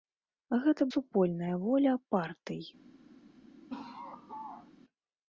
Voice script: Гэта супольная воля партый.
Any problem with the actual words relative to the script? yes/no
no